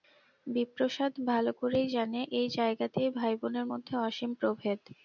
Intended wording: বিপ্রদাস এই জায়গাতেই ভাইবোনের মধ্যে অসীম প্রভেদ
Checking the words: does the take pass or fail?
fail